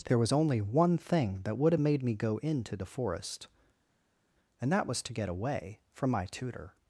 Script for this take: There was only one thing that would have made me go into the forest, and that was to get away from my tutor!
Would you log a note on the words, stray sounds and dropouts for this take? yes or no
no